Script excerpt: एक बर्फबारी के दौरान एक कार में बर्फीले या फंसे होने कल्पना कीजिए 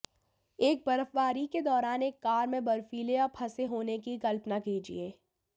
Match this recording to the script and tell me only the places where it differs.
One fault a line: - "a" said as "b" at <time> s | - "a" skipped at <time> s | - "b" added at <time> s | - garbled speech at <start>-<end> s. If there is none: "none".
- "की" added at 4.0 s